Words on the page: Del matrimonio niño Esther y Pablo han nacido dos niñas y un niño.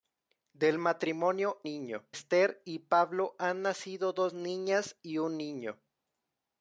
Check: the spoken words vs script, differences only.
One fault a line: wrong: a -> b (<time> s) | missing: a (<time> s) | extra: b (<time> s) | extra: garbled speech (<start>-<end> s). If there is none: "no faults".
no faults